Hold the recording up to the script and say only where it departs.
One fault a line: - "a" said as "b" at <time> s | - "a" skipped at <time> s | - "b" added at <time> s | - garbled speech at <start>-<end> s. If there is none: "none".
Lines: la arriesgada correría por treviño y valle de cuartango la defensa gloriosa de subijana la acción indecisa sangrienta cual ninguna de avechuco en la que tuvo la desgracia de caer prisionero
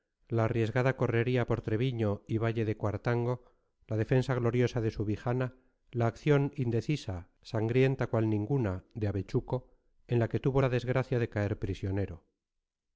none